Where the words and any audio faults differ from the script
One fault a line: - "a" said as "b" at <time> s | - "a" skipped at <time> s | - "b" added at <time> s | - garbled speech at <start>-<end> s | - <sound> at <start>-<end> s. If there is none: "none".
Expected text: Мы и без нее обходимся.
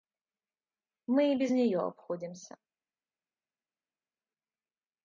none